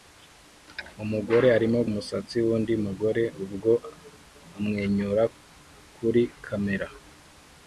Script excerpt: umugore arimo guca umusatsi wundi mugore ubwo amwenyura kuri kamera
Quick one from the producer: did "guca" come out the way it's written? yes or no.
no